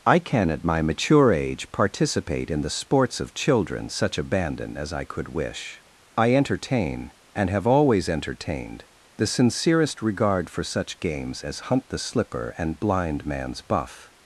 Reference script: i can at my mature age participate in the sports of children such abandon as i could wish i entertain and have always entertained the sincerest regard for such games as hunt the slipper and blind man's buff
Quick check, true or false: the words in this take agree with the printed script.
true